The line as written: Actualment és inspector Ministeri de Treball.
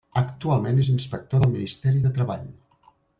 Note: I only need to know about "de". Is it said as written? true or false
true